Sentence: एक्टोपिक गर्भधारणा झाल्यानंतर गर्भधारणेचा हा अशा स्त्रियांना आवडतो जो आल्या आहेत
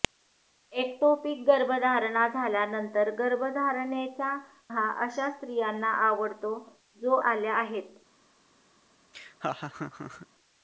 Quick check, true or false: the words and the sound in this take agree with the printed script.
false